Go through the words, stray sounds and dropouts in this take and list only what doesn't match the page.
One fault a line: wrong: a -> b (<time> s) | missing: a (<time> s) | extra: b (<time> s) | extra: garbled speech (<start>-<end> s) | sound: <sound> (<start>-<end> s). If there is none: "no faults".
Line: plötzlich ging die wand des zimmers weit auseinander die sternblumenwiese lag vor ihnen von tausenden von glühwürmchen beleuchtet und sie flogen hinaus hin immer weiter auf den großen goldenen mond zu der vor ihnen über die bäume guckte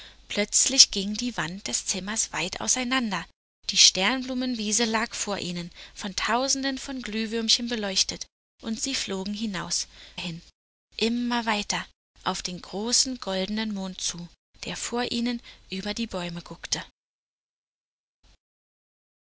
no faults